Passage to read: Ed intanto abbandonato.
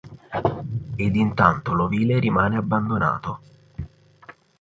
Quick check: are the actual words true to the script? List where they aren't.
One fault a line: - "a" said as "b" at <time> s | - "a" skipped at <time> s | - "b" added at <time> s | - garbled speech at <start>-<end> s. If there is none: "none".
- "l'ovile rimane" added at 1.7 s